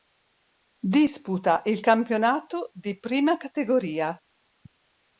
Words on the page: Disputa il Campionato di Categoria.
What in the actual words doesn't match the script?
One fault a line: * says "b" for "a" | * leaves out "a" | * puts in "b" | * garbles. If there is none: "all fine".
* puts in "Prima"